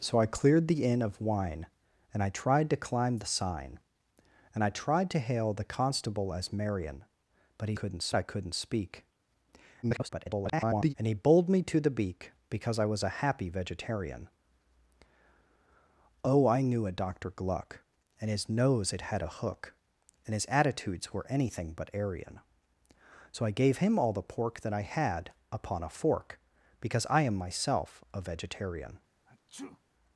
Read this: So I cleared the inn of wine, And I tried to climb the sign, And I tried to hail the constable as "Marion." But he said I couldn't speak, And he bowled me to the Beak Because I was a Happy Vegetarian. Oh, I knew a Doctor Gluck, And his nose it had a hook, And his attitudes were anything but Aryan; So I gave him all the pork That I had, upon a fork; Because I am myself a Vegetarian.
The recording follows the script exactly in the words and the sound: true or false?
false